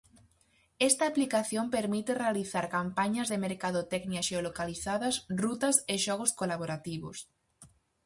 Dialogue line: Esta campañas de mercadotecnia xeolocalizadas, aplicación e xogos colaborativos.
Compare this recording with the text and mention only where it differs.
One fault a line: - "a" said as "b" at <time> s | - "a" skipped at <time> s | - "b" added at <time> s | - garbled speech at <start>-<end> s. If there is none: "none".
- "aplicación permite realizar" added at 1.1 s
- "aplicación" said as "rutas" at 5.4 s